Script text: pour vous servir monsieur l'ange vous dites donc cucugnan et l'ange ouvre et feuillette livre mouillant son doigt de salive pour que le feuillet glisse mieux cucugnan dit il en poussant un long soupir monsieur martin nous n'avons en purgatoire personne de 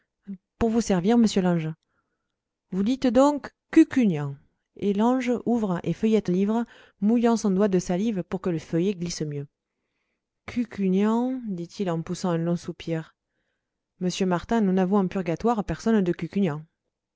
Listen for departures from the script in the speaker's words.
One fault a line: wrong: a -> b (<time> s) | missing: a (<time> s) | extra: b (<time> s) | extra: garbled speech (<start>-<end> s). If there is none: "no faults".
no faults